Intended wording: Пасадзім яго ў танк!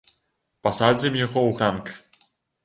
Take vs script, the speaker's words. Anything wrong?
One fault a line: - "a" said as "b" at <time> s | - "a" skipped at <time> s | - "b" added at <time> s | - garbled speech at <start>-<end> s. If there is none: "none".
none